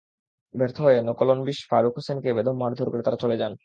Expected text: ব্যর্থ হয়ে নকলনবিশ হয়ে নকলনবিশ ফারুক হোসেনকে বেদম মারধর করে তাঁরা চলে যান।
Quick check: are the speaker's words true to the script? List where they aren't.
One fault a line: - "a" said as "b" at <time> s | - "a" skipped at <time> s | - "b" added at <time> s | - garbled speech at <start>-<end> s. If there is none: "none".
- "হয়ে নকলনবিশ" skipped at 1.6 s